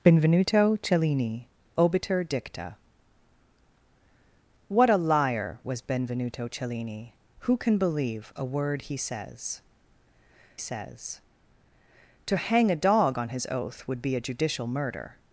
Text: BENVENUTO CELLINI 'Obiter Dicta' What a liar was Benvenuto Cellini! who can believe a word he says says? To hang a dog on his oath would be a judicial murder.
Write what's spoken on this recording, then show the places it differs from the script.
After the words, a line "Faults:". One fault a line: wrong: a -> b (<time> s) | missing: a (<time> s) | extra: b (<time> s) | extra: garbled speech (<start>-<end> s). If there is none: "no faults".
BENVENUTO CELLINI 'Obiter Dicta' What a liar was Benvenuto Cellini! who can believe a word he says says? To hang a dog on his oath would be a judicial murder.
Faults:
no faults